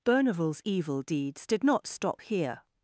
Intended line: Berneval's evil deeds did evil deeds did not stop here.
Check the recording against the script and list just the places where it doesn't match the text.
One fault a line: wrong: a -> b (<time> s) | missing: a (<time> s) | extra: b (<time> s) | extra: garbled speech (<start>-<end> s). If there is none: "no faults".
missing: evil deeds did (1.6 s)